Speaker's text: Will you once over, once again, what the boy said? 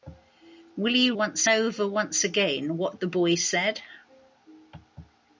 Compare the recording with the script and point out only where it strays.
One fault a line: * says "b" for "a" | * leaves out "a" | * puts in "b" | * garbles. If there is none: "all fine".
all fine